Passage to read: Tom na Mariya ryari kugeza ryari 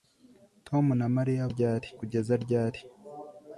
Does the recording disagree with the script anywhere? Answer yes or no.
no